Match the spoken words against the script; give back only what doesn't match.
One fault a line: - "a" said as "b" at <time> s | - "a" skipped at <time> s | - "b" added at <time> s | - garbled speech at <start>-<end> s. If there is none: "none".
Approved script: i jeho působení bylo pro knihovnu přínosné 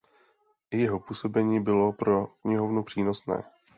none